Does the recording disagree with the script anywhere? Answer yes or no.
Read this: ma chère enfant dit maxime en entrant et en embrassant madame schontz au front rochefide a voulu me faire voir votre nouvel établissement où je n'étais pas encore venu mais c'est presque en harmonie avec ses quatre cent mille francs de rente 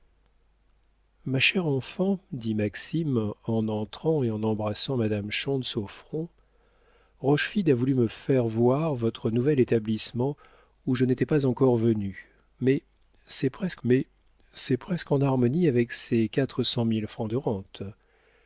yes